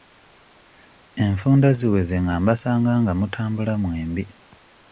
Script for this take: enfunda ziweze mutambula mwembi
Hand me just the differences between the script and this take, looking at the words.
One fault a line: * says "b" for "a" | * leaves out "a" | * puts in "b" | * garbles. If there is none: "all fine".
* puts in "nga mbasanga nga"